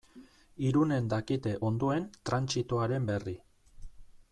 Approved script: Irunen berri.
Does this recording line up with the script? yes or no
no